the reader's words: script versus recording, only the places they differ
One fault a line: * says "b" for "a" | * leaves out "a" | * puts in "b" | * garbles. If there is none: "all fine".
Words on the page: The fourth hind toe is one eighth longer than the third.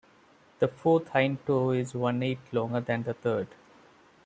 all fine